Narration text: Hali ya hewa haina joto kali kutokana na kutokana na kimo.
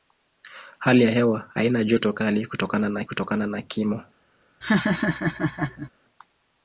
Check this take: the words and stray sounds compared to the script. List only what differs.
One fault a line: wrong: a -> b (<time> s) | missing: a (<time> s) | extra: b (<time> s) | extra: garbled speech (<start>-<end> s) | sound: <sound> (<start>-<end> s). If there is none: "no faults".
sound: laugh (4.6-5.9 s)